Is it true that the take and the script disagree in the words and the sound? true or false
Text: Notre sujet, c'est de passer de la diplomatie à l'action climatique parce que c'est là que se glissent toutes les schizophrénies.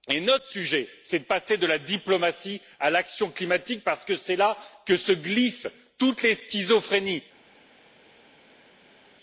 false